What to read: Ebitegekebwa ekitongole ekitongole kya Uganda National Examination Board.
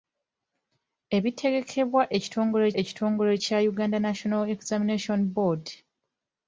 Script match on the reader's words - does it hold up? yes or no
yes